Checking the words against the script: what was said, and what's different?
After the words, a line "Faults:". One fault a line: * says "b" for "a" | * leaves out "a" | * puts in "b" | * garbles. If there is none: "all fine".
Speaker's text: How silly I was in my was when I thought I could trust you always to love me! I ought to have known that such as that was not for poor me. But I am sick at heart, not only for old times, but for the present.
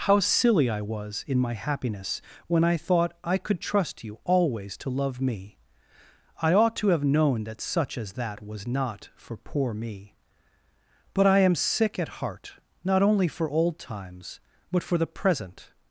How silly I was in my happiness when I thought I could trust you always to love me! I ought to have known that such as that was not for poor me. But I am sick at heart, not only for old times, but for the present.
Faults:
* says "happiness" for "was"